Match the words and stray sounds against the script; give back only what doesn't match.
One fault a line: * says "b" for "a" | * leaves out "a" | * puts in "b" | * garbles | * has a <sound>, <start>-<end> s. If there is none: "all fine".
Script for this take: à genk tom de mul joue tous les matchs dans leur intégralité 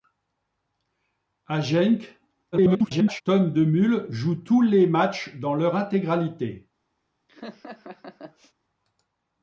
* garbles
* has a laugh, 7.3-8.5 s